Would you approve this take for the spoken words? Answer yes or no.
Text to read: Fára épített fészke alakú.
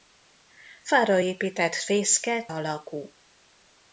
yes